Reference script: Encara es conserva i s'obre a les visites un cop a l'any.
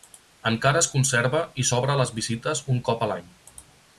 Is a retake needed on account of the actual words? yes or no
no